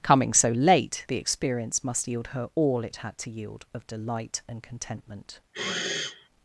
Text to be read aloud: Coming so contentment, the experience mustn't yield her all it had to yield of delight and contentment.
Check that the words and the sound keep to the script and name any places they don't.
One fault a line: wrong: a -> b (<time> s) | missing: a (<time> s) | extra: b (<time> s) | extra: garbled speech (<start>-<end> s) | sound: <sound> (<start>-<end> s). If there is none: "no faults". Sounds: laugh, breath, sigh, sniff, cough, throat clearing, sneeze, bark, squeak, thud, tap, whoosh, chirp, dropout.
wrong: contentment -> late (0.5 s)
wrong: mustn't -> must (1.8 s)
sound: sniff (5.5-6.3 s)